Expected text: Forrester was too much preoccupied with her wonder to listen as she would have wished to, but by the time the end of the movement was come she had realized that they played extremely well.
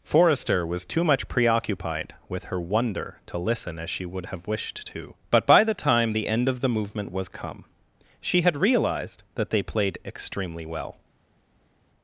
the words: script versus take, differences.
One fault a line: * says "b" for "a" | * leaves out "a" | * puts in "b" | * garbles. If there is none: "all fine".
all fine